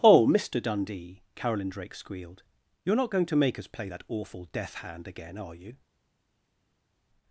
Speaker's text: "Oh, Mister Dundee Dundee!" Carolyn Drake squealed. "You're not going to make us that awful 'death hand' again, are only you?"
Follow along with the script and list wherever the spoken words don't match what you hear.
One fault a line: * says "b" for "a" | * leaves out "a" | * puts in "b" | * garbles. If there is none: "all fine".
* leaves out "Dundee"
* puts in "play"
* leaves out "only"